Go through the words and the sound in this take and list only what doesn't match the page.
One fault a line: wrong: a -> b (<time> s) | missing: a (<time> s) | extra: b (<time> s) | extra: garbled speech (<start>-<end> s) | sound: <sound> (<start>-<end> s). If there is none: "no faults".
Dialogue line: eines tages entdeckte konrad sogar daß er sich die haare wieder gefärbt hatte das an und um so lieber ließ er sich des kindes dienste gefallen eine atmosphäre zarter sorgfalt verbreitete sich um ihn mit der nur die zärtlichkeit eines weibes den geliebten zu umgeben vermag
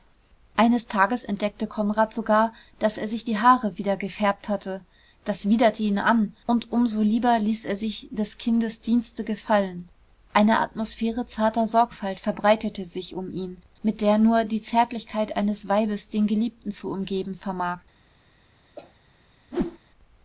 extra: widerte ihn (5.5 s)
sound: cough (18.8-18.9 s)
sound: whoosh (19.5-19.8 s)